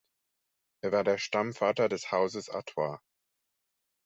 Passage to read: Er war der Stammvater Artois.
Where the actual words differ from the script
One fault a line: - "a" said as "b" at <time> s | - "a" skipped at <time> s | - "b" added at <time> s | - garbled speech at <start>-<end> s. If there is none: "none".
- "des Hauses" added at 1.9 s